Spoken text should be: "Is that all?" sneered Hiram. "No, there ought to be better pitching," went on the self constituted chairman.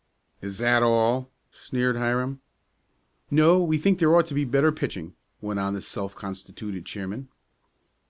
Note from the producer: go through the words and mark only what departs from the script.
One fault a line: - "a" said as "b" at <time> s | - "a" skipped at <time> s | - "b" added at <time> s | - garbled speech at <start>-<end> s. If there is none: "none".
- "we think" added at 3.6 s